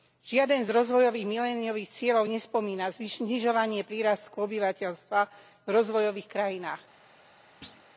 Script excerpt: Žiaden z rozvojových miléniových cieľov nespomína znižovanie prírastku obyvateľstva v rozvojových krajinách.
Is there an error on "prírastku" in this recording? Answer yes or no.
no